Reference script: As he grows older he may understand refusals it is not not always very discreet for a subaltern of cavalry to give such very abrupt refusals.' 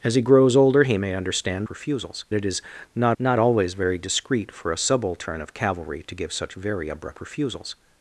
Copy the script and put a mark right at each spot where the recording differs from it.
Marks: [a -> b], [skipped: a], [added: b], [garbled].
As he grows older he may understand refusals it is not not always very discreet for a subaltern of cavalry to give such very abrupt refusals.'